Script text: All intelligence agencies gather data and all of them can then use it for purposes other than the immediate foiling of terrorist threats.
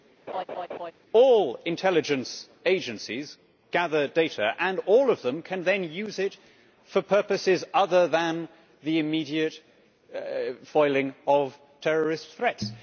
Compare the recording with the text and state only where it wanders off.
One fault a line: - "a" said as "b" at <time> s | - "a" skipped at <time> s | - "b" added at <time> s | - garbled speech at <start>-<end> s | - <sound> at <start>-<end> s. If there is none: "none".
- laugh at 0.3-0.9 s